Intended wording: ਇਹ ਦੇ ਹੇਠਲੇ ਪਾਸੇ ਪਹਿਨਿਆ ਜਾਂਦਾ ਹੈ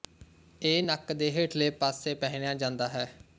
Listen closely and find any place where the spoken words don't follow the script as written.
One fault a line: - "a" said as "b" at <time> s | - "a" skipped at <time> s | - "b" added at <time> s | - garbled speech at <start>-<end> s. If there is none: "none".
- "ਨੱਕ" added at 0.8 s